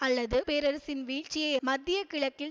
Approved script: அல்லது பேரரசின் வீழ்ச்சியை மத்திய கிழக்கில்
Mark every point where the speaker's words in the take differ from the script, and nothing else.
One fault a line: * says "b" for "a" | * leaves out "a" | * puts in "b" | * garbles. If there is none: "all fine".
all fine